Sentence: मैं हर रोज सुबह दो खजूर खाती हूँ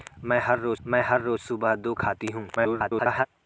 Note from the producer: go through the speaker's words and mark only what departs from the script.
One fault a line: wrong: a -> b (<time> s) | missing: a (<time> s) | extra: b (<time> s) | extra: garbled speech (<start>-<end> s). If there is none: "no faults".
extra: मैं हर रोज (0.9 s)
missing: खजूर (1.9 s)
extra: garbled speech (2.6-3.3 s)